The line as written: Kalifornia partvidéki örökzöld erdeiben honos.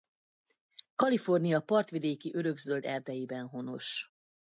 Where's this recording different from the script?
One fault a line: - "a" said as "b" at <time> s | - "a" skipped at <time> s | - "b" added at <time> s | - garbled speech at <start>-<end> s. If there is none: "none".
none